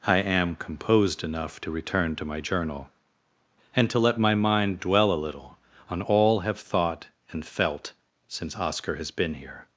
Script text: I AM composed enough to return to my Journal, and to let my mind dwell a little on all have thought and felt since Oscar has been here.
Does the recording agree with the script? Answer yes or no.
yes